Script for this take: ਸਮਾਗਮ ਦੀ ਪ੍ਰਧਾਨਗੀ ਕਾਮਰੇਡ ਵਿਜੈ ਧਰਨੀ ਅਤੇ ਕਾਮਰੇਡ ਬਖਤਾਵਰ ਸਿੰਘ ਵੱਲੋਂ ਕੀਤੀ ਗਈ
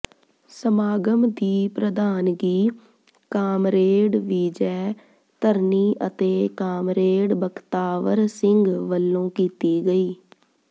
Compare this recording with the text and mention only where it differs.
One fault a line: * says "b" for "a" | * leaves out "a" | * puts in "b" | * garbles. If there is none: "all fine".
all fine